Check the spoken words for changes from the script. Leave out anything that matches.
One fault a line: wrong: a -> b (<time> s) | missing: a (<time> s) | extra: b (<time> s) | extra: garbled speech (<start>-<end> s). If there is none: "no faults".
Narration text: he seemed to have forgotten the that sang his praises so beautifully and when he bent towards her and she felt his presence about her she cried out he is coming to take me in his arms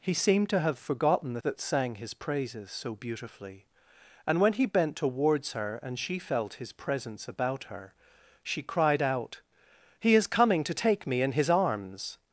no faults